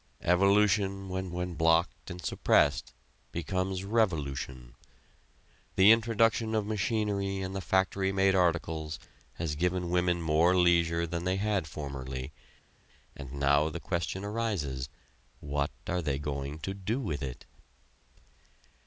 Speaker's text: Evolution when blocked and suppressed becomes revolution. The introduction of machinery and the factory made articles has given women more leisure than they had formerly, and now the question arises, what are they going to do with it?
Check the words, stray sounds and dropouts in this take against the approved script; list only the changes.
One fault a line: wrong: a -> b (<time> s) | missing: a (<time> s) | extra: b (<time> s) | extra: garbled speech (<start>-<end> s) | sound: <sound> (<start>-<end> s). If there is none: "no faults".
extra: when (1.3 s)